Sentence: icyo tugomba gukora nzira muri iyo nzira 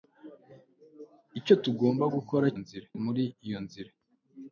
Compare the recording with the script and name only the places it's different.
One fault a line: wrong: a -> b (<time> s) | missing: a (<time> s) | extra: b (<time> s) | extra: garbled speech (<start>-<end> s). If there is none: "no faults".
no faults